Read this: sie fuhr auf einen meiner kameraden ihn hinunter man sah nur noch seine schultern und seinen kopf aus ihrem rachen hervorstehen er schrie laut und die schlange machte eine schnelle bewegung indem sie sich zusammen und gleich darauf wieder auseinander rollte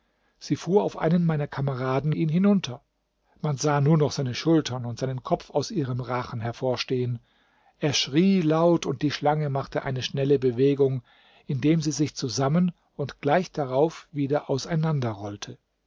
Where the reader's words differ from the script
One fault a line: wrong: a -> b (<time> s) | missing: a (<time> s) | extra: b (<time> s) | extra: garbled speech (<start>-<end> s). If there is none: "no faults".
no faults